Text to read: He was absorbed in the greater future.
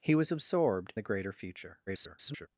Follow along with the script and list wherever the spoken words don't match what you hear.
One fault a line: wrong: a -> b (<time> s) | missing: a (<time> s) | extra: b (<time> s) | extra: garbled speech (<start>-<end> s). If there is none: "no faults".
missing: in (0.9 s)
extra: garbled speech (1.9-2.5 s)